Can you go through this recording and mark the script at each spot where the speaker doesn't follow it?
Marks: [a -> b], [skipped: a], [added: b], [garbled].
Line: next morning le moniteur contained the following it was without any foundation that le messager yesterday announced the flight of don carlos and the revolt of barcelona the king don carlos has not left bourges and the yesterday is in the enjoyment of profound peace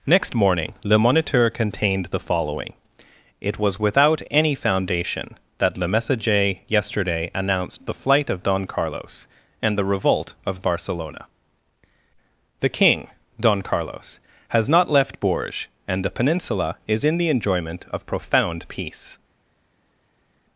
next morning le moniteur contained the following it was without any foundation that le messager yesterday announced the flight of don carlos and the revolt of barcelona the king don carlos has not left bourges and the [yesterday -> peninsula] is in the enjoyment of profound peace